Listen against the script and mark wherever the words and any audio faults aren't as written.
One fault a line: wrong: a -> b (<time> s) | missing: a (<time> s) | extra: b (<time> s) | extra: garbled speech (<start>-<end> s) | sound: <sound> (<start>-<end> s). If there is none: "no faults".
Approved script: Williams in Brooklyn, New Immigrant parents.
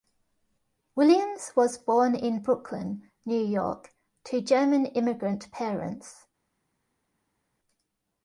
extra: was born (1.6 s)
extra: York to German (3.4 s)